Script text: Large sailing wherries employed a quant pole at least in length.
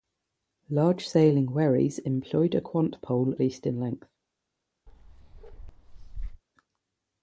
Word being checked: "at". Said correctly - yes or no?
no